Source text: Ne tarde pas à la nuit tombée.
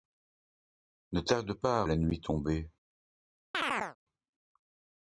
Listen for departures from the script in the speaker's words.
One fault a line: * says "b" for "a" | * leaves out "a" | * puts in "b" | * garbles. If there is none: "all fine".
all fine